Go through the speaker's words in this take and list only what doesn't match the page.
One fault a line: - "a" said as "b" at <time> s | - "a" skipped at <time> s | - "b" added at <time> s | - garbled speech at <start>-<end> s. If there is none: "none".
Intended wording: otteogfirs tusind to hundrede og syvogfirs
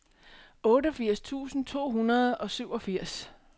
none